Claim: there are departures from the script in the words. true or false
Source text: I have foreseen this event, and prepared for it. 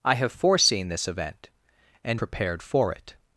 false